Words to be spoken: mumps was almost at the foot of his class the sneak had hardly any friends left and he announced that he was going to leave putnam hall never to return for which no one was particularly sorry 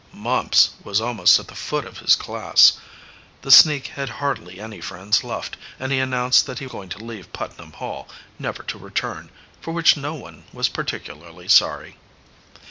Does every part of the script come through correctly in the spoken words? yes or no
no